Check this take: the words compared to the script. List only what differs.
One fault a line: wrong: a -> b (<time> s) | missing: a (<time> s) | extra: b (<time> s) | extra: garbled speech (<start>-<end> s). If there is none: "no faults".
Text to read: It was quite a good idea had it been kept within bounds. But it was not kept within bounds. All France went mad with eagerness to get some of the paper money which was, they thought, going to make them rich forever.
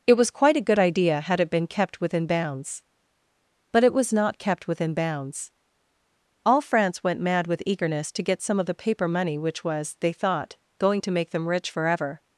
no faults